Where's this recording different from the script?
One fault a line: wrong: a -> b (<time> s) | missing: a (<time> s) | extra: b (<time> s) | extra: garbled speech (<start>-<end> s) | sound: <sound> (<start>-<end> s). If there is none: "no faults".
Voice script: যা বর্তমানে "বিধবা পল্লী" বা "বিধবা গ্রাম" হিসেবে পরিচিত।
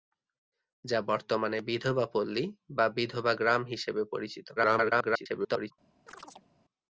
extra: garbled speech (4.6-5.7 s)
sound: chirp (6.1-6.5 s)